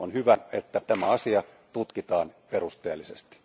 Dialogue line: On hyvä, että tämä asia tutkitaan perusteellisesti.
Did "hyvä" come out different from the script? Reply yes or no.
no